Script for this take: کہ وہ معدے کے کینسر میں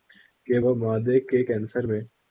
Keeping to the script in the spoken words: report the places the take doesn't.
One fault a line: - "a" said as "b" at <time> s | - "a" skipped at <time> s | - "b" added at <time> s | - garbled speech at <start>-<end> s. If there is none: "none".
none